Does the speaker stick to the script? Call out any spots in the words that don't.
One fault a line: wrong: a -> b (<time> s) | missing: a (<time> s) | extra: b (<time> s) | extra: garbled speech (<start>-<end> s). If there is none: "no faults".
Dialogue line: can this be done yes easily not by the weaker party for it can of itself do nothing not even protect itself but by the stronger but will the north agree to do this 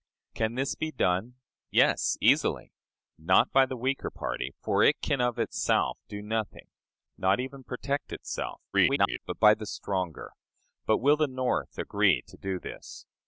extra: garbled speech (8.7-9.2 s)